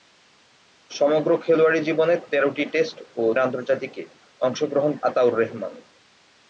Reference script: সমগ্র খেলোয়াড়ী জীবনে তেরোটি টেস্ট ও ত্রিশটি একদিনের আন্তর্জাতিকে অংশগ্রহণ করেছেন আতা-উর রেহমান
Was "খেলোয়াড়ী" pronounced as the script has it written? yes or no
yes